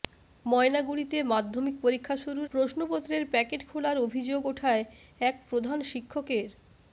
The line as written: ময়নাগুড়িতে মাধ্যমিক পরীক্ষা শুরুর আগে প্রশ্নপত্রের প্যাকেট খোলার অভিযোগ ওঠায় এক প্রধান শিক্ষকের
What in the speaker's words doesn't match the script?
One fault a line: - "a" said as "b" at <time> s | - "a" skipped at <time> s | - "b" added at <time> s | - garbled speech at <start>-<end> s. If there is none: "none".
- "আগে" skipped at 2.5 s